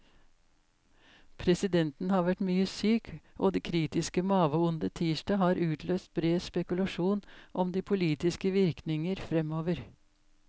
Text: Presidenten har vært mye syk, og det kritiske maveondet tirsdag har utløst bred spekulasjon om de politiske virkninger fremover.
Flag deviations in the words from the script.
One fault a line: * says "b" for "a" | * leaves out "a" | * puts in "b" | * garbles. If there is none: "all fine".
all fine